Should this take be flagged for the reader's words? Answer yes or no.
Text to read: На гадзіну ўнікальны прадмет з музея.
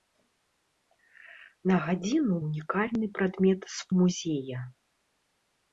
no